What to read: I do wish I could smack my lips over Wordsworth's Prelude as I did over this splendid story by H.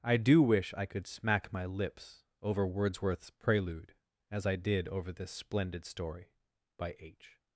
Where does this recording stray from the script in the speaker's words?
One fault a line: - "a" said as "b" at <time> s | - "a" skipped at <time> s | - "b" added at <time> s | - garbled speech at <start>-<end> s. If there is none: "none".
none